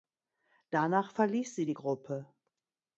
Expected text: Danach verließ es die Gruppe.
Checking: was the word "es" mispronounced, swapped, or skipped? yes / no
yes